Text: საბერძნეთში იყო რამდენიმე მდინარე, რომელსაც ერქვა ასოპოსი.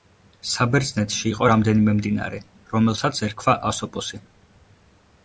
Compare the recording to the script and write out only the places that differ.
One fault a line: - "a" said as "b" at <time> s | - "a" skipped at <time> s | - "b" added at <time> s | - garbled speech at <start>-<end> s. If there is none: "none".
none